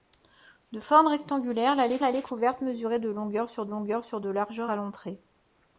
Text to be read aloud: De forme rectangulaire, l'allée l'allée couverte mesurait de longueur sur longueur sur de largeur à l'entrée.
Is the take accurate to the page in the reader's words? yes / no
yes